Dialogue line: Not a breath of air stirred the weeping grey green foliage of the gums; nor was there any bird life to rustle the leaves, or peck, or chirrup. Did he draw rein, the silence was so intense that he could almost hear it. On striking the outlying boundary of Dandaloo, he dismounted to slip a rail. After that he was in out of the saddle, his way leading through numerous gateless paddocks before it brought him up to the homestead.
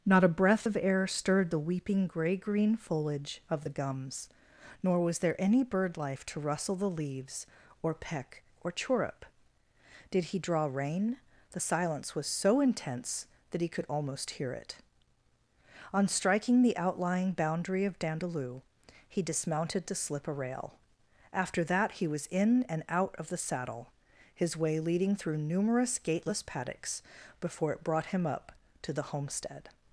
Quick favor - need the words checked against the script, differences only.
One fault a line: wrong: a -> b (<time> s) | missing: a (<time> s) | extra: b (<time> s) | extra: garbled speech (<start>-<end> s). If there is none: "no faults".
extra: and (22.7 s)